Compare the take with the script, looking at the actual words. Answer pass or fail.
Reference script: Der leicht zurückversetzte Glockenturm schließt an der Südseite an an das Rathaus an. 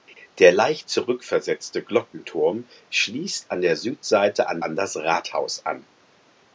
pass